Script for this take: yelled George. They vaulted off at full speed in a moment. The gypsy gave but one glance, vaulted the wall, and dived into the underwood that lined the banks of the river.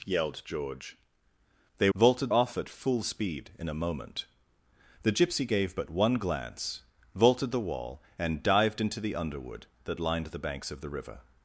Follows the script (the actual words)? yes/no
yes